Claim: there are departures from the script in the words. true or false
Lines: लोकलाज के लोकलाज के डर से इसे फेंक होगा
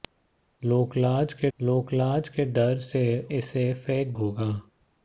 false